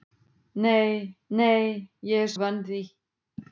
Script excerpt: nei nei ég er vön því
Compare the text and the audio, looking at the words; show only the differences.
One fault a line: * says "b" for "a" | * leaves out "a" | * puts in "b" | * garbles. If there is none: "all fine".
all fine